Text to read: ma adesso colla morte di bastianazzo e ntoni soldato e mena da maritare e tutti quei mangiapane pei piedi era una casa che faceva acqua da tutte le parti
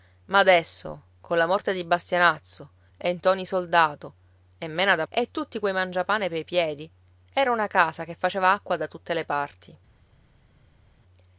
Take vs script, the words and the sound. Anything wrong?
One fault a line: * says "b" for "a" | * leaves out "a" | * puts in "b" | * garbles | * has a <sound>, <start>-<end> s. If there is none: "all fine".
* leaves out "maritare"